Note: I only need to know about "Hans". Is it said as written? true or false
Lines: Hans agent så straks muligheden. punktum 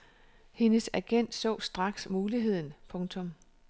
false